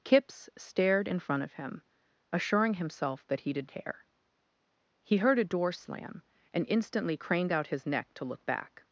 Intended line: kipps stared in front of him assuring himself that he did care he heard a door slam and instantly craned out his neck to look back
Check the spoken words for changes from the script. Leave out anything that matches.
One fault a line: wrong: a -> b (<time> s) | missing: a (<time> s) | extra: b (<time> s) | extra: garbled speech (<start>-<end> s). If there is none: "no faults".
no faults